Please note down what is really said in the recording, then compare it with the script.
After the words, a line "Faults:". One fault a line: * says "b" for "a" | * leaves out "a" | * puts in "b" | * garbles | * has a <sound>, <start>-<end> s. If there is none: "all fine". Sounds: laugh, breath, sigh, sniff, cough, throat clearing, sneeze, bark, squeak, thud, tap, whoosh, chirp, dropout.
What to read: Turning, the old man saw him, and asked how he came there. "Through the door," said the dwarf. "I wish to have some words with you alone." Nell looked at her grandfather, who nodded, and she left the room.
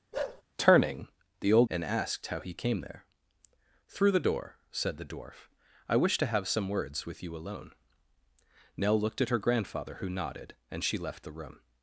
Turning, the old and asked how he came there. "Through the door," said the dwarf. "I wish to have some words with you alone." Nell looked at her grandfather, who nodded, and she left the room.
Faults:
* has a bark, 0.1-0.4 s
* leaves out "man saw him"